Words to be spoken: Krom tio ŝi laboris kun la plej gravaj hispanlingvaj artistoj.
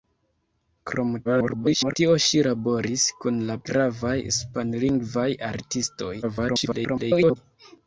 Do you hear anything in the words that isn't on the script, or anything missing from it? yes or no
yes